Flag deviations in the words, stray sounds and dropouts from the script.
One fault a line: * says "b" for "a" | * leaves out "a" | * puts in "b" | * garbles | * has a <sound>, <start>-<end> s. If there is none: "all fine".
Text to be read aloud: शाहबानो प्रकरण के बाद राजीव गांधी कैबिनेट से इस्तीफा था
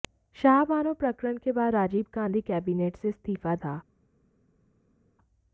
all fine